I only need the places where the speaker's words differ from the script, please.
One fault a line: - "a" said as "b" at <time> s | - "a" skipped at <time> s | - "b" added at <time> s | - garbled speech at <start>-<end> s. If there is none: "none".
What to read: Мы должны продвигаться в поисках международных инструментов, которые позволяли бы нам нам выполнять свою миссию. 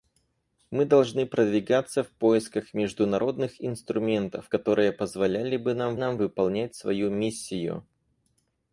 none